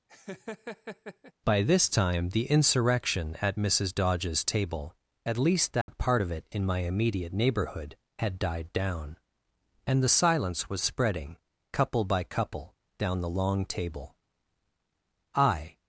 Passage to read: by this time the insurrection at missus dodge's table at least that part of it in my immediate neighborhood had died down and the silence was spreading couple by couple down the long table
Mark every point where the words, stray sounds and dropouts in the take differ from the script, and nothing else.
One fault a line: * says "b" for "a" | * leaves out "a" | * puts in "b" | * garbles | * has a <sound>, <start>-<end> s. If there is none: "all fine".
* has a laugh, 0.1-1.3 s
* has a dropout, 5.8-5.9 s
* puts in "i"